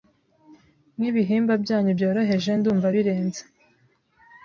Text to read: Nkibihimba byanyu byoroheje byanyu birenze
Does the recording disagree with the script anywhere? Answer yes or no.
yes